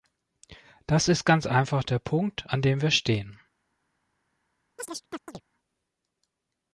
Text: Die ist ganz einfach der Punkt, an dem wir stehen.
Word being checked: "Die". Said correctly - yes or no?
no